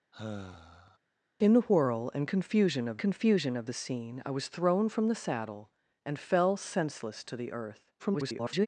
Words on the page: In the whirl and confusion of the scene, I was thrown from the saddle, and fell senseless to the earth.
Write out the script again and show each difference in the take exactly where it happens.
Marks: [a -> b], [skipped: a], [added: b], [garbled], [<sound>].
[sigh] In the whirl and confusion of [added: confusion of] the scene, I was thrown from the saddle, and fell senseless to the earth. [garbled]